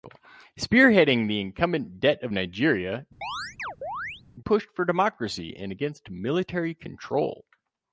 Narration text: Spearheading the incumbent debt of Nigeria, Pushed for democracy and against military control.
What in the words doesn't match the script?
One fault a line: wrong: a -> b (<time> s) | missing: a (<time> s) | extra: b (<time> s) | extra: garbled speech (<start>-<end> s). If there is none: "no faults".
no faults